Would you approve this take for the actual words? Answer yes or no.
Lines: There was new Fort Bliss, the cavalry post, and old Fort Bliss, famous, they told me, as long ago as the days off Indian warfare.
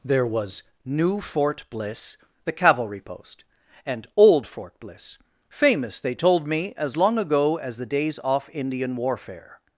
yes